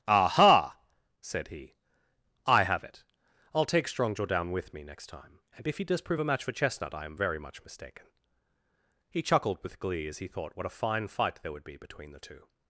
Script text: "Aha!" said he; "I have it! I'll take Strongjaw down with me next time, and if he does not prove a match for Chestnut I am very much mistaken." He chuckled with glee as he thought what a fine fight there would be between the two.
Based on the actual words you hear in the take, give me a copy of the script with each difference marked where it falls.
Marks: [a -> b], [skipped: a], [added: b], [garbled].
"Aha!" said he; "I have it! I'll take Strongjaw down with me next time, and if he does [skipped: not] prove a match for Chestnut I am very much mistaken." He chuckled with glee as he thought what a fine fight there would be between the two.